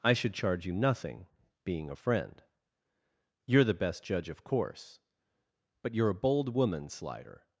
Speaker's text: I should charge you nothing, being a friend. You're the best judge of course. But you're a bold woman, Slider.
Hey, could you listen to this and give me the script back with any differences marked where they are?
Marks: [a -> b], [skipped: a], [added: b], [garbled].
I should charge you nothing, being a friend. You're the best judge of course. But you're a bold woman, Slider.